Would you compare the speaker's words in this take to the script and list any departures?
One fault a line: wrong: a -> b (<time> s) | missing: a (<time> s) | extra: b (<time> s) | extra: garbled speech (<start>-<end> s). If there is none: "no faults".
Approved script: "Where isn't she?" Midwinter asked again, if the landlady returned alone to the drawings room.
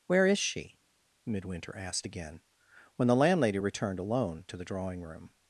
wrong: isn't -> is (0.2 s)
wrong: if -> when (3.0 s)
wrong: drawings -> drawing (4.6 s)